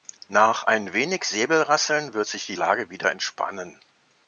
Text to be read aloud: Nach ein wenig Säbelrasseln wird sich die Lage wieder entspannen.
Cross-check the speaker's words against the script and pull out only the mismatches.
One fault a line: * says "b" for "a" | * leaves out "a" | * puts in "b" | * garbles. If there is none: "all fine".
all fine